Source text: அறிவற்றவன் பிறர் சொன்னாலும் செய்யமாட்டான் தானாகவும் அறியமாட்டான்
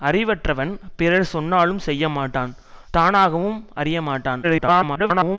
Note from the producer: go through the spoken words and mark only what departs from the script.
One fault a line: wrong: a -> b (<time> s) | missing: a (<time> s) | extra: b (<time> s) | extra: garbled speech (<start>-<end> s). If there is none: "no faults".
extra: garbled speech (4.4-5.4 s)